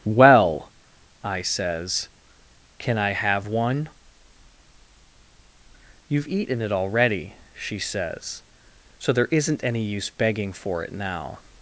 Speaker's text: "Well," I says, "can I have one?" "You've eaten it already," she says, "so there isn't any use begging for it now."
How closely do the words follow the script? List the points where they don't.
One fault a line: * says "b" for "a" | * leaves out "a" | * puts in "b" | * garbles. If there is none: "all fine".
all fine